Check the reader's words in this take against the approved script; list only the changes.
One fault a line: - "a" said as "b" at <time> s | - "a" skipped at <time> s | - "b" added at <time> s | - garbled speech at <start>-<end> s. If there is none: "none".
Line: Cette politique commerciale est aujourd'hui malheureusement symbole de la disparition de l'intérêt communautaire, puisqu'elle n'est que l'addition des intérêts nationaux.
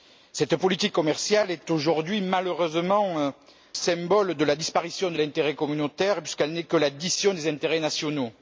none